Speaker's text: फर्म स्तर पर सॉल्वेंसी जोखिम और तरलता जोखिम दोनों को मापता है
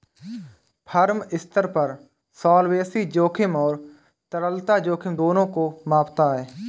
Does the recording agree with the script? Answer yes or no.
yes